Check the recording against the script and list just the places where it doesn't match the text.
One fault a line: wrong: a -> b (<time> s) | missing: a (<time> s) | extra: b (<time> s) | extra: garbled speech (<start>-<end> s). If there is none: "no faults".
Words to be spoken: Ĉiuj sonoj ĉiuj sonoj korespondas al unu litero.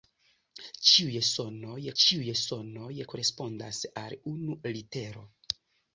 no faults